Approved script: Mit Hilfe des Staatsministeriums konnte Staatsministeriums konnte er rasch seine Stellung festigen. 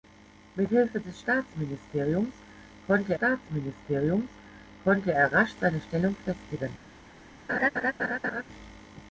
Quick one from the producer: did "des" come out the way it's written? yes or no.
yes